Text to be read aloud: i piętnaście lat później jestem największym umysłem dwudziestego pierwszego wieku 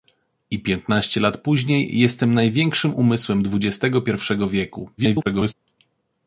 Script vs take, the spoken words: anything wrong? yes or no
yes